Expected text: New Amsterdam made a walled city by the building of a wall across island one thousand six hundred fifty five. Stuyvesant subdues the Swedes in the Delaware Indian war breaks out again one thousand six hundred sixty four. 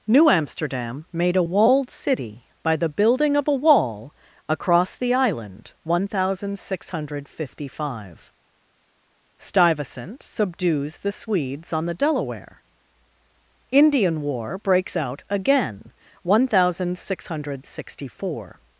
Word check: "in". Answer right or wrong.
wrong